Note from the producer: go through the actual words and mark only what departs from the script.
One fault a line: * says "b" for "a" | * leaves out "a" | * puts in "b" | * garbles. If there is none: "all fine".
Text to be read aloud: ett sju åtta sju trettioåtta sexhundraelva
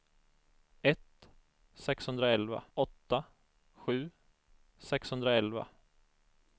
* says "sexhundraelva" for "sju"
* leaves out "trettioåtta"